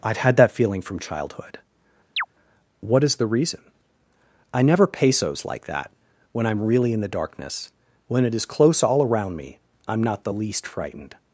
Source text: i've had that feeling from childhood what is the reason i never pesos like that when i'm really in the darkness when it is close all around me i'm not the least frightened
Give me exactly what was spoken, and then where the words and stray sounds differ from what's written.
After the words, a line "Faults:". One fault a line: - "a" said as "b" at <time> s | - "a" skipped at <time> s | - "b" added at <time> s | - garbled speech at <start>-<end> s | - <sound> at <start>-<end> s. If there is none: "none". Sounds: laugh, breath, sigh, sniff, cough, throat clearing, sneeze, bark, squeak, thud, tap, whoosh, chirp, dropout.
i've had that feeling from childhood what is the reason i never pesos like that when i'm really in the darkness when it is close all around me i'm not the least frightened
Faults:
- chirp at 2.2-2.3 s